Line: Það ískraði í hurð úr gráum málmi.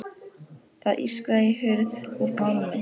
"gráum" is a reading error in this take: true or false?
true